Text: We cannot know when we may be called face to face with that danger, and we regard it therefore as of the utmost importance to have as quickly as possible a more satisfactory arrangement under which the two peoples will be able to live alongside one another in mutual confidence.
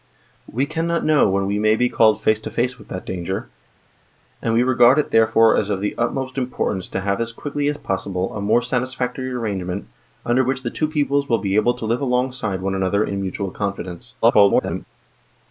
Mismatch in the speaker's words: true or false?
true